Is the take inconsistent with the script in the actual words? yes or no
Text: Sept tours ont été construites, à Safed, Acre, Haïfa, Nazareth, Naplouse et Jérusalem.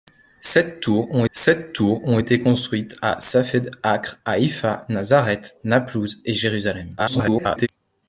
yes